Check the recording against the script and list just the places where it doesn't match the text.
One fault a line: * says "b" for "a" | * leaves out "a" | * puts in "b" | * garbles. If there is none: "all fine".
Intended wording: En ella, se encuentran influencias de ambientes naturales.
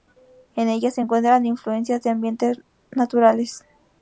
all fine